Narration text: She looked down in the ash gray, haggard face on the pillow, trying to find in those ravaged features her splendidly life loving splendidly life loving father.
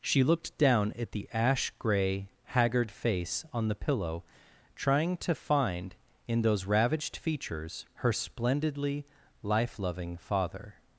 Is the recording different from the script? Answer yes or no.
yes